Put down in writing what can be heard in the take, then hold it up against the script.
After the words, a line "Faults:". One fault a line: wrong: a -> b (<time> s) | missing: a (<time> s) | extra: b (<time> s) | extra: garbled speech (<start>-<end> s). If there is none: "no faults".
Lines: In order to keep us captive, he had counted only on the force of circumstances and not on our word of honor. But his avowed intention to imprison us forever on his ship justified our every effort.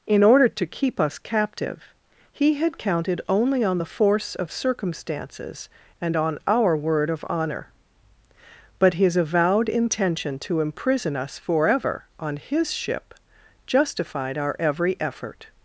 In order to keep us captive, he had counted only on the force of circumstances and on our word of honor. But his avowed intention to imprison us forever on his ship justified our every effort.
Faults:
missing: not (6.2 s)